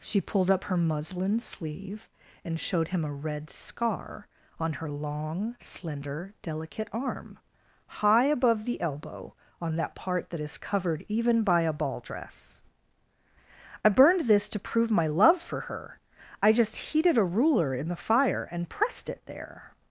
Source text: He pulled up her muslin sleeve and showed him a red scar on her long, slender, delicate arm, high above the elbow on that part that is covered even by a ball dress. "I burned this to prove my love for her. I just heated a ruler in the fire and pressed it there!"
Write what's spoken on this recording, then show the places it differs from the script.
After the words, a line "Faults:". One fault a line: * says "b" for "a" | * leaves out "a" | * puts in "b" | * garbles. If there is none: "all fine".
She pulled up her muslin sleeve and showed him a red scar on her long, slender, delicate arm, high above the elbow on that part that is covered even by a ball dress. "I burned this to prove my love for her. I just heated a ruler in the fire and pressed it there!"
Faults:
* says "She" for "He"